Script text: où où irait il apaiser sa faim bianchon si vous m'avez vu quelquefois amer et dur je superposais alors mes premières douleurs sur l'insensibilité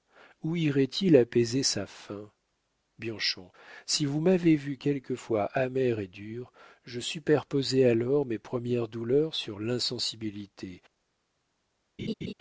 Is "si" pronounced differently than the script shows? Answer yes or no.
no